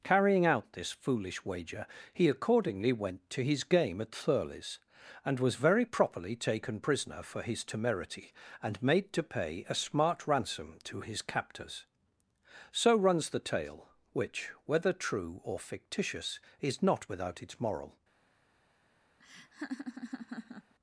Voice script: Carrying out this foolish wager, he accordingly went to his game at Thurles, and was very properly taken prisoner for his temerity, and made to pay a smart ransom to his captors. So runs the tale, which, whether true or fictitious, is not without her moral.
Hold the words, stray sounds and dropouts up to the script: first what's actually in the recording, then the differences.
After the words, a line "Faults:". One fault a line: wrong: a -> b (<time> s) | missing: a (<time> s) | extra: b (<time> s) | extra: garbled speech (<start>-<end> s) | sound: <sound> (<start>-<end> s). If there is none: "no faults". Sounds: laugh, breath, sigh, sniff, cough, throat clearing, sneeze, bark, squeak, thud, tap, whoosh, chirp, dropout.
Carrying out this foolish wager, he accordingly went to his game at Thurles, and was very properly taken prisoner for his temerity, and made to pay a smart ransom to his captors. So runs the tale, which, whether true or fictitious, is not without its moral.
Faults:
wrong: her -> its (17.4 s)
sound: laugh (19.2-20.7 s)